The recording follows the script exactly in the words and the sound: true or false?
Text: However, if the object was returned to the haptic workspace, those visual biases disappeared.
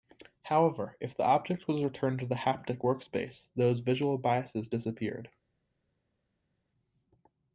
true